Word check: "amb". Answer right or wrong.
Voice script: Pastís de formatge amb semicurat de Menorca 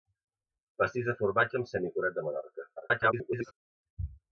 right